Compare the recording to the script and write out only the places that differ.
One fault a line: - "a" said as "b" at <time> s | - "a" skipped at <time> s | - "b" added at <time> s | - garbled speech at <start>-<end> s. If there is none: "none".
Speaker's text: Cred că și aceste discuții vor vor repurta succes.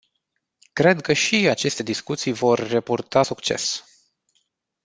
- "vor" skipped at 2.6 s